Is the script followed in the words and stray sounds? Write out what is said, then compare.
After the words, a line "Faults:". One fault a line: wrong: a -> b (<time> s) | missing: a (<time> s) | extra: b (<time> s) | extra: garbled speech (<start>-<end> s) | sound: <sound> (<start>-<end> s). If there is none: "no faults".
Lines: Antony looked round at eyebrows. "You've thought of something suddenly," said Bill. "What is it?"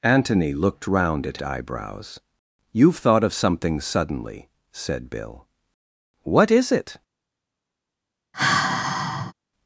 Antony looked round at eyebrows. "You've thought of something suddenly," said Bill. "What is it?"
Faults:
sound: sigh (8.3-9.3 s)